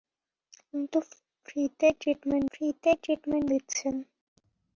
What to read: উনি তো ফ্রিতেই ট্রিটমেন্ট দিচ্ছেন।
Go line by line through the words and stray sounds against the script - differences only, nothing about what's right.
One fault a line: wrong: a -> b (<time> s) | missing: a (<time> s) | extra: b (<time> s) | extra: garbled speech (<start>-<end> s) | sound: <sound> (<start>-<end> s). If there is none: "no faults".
extra: ফ্রিতেই ট্রিটমেন্ট (2.5 s)